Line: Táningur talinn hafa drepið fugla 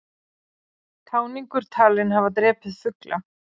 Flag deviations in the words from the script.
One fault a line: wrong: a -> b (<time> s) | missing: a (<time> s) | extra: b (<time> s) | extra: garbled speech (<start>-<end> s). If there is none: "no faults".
no faults